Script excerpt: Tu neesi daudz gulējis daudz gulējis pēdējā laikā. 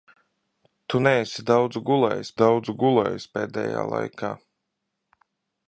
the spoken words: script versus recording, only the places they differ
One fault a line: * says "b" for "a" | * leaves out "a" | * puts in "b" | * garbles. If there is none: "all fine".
all fine